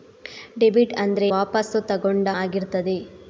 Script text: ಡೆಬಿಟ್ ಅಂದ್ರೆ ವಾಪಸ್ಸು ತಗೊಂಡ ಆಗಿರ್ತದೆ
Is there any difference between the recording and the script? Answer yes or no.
no